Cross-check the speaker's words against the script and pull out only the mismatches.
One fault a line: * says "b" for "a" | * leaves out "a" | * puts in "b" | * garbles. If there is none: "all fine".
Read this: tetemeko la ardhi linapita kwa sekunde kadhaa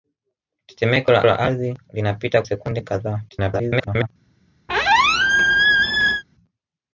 * puts in "la"
* leaves out "kwa"
* garbles